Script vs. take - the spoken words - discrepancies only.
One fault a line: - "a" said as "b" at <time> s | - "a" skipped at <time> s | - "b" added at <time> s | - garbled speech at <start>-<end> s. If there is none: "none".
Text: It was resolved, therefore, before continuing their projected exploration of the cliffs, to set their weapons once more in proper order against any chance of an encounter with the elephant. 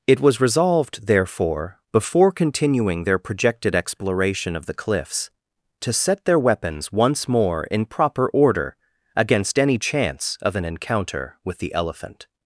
none